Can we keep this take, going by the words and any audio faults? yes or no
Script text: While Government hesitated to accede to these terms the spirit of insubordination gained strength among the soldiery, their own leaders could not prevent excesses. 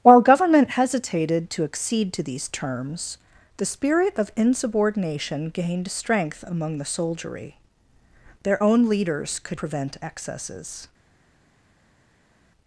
no